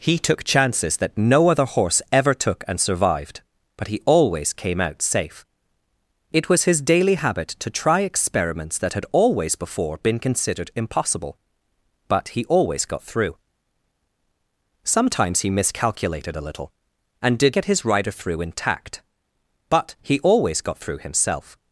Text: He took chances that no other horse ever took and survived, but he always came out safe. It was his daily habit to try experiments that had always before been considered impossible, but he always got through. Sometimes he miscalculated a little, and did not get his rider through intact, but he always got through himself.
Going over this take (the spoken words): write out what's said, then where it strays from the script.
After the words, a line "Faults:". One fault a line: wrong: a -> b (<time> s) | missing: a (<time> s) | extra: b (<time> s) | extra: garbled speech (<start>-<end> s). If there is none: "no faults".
He took chances that no other horse ever took and survived, but he always came out safe. It was his daily habit to try experiments that had always before been considered impossible, but he always got through. Sometimes he miscalculated a little, and did get his rider through intact, but he always got through himself.
Faults:
missing: not (17.6 s)